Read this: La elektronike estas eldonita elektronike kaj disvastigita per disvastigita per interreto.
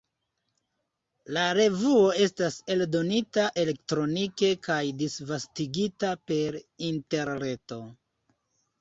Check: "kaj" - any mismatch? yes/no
no